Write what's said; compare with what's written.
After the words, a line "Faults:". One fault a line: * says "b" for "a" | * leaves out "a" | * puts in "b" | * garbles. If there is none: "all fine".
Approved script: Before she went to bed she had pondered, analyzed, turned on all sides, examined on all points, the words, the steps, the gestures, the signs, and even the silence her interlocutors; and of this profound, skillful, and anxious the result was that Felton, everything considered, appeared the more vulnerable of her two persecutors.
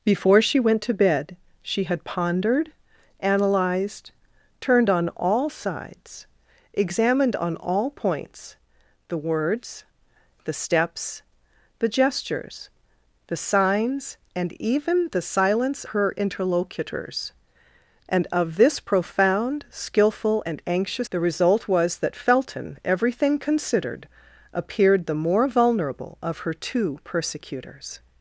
Before she went to bed she had pondered, analyzed, turned on all sides, examined on all points, the words, the steps, the gestures, the signs, and even the silence her interlocutors; and of this profound, skillful, and anxious the result was that Felton, everything considered, appeared the more vulnerable of her two persecutors.
Faults:
all fine